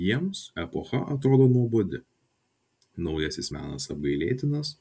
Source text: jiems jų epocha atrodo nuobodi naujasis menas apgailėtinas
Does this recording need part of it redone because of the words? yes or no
yes